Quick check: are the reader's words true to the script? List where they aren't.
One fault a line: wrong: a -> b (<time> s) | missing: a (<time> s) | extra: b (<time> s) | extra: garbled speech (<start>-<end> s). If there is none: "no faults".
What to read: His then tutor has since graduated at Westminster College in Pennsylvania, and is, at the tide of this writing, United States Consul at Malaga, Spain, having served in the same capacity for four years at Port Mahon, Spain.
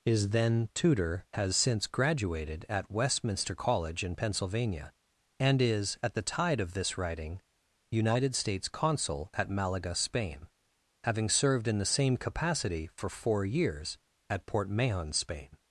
no faults